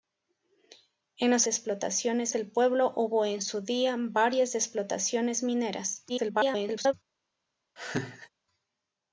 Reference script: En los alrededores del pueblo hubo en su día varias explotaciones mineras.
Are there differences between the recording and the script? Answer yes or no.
yes